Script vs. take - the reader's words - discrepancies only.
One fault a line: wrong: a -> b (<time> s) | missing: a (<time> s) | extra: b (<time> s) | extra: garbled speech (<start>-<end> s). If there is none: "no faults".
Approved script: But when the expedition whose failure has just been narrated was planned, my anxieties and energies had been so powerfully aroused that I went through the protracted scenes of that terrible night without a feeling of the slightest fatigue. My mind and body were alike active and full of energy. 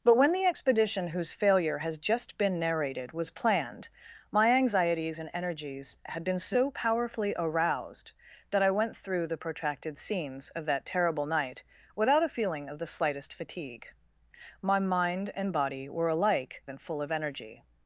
missing: active (16.6 s)